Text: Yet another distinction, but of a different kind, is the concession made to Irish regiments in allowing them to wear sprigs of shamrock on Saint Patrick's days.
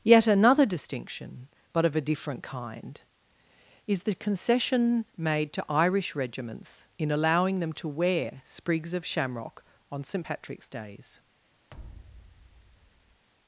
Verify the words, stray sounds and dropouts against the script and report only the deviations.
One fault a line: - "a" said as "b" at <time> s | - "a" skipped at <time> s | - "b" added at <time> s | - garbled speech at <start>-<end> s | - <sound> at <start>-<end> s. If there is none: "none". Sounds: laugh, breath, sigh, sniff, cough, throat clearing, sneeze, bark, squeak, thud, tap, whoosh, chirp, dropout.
- thud at 11.7-13.3 s